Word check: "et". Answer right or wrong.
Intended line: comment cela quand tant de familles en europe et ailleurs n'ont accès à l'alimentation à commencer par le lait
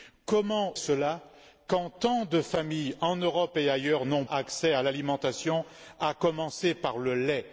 right